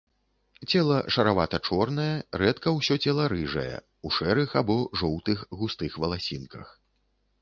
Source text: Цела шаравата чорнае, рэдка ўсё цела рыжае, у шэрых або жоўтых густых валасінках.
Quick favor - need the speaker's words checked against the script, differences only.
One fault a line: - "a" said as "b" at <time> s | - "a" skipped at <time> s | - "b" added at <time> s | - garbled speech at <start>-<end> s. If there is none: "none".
none